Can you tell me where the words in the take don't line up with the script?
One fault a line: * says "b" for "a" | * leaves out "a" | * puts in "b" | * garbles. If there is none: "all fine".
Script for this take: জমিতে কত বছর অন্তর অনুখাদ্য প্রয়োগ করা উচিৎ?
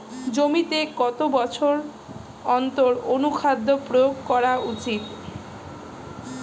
all fine